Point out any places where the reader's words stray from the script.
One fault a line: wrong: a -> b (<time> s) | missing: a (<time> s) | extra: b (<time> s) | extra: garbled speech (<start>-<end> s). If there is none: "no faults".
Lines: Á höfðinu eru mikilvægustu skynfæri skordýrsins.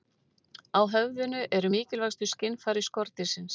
no faults